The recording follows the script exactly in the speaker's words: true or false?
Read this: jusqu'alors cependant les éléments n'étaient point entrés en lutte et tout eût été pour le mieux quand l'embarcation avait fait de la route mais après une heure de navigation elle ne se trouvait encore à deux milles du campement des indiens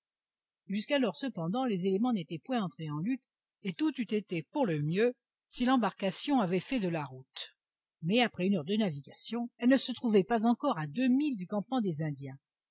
false